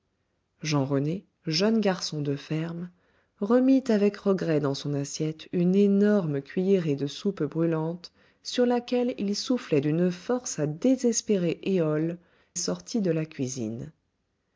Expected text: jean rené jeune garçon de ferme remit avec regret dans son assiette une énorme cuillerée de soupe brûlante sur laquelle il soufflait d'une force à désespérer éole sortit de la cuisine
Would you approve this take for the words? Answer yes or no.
yes